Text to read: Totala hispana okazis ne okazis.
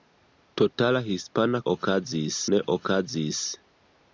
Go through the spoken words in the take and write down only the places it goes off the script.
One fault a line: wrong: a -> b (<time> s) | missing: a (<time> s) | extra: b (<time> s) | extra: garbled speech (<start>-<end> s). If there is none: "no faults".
no faults